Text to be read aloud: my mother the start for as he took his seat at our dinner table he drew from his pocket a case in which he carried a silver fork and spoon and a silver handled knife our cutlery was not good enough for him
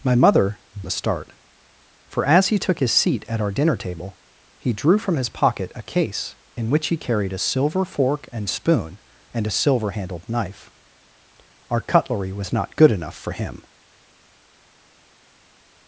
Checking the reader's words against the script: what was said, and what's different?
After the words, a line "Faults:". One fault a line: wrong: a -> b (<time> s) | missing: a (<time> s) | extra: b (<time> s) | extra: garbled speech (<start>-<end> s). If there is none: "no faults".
my mother the start for as he took his seat at our dinner table he drew from his pocket a case in which he carried a silver fork and spoon and a silver handled knife our cutlery was not good enough for him
Faults:
no faults